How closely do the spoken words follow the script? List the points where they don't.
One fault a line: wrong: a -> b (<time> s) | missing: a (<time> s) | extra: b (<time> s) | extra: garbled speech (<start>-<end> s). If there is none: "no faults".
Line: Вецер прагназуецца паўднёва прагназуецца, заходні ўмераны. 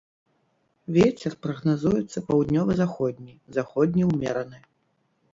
wrong: прагназуецца -> заходні (2.8 s)